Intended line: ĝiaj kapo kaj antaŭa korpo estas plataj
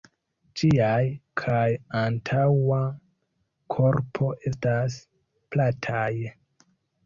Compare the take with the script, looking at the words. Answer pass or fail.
fail